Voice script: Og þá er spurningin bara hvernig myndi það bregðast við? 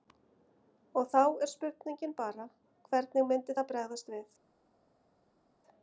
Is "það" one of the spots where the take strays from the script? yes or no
no